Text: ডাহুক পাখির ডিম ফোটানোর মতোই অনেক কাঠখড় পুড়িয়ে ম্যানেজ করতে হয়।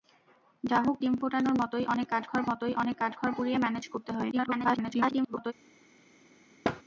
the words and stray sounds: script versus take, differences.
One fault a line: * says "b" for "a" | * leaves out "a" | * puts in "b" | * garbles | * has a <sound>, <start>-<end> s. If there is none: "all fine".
* leaves out "পাখির"
* puts in "মতোই অনেক কাঠখড়"
* garbles
* has a thud, 6.6-6.8 s